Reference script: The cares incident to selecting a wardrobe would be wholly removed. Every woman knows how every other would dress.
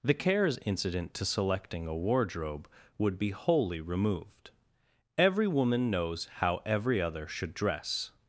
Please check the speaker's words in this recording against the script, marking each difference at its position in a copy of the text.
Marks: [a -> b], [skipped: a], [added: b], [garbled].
The cares incident to selecting a wardrobe would be wholly removed. Every woman knows how every other [would -> should] dress.